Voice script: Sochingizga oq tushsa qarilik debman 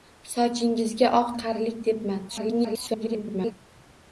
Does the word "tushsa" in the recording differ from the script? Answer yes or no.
yes